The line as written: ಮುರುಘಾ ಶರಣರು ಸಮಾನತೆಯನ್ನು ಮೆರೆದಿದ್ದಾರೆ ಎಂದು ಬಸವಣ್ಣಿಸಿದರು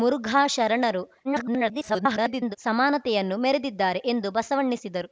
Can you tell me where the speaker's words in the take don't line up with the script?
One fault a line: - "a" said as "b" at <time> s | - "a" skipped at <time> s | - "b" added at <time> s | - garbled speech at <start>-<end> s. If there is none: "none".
- garbled speech at 1.2-2.6 s